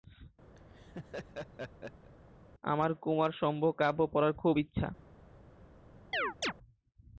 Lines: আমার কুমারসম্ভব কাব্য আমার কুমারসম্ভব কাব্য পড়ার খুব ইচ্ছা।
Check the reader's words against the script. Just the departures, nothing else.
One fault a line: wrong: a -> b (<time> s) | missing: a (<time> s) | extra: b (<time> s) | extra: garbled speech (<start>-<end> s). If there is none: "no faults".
missing: আমার কুমারসম্ভব কাব্য (4.0 s)